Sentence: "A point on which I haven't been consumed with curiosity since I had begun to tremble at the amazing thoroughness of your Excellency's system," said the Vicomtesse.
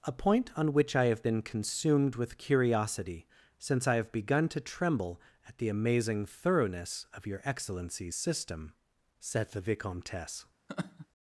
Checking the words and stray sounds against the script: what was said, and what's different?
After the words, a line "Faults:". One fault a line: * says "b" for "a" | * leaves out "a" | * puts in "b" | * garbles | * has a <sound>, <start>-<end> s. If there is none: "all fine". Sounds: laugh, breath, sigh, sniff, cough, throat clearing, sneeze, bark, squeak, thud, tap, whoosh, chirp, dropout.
"A point on which I have been consumed with curiosity since I have begun to tremble at the amazing thoroughness of your Excellency's system," said the Vicomtesse.
Faults:
* says "have" for "haven't"
* says "have" for "had"
* has a laugh, 10.7-11.1 s